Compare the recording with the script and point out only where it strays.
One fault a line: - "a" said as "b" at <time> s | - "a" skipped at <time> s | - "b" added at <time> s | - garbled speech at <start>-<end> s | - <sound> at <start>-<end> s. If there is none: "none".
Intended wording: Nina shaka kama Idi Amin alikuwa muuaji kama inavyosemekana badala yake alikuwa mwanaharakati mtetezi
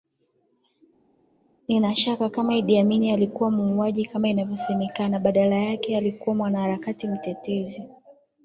none